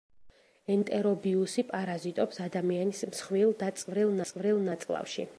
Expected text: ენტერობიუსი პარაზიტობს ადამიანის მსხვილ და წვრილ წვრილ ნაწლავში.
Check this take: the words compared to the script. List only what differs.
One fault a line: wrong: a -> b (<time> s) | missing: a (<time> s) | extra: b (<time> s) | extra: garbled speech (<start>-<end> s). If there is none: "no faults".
no faults